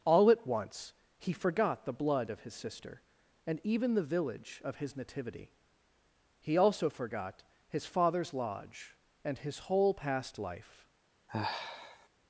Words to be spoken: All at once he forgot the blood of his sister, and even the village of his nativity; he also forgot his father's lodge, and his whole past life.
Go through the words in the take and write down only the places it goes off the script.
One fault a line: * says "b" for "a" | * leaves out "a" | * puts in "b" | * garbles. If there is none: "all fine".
all fine